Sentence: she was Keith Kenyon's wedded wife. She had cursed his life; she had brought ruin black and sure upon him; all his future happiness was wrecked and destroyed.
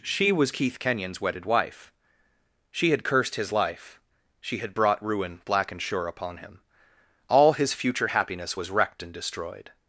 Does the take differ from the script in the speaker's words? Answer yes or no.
no